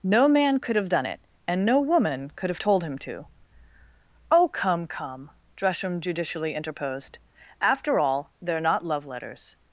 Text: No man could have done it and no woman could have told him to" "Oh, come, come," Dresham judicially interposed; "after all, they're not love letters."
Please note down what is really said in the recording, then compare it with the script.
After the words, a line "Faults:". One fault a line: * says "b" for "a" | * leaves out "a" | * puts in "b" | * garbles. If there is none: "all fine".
No man could have done it and no woman could have told him to" "Oh, come, come," Dresham judicially interposed; "after all, they're not love letters."
Faults:
all fine